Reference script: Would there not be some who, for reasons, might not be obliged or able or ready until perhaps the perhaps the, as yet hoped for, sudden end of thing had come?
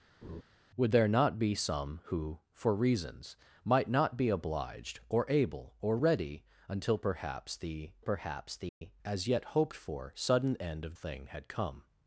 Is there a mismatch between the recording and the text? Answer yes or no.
no